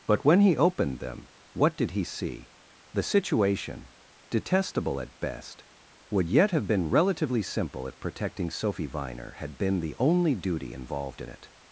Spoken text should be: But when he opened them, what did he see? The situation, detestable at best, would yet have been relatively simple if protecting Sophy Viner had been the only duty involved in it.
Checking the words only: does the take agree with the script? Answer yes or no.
yes